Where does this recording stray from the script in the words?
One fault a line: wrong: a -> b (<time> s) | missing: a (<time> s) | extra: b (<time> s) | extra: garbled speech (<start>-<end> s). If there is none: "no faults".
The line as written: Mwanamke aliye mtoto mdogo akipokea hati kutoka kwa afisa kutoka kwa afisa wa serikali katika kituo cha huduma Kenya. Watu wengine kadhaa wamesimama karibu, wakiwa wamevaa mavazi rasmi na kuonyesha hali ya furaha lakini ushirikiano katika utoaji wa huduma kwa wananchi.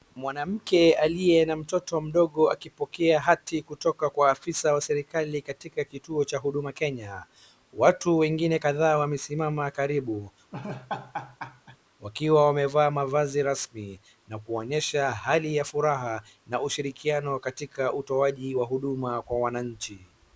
extra: na (1.4 s)
missing: kutoka kwa afisa (4.7 s)
wrong: lakini -> na (16.5 s)